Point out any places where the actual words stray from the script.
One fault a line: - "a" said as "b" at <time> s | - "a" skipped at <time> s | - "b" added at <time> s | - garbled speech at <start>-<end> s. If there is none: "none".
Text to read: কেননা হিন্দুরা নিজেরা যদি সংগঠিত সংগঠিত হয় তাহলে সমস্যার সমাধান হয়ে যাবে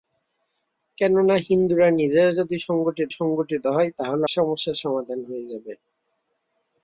none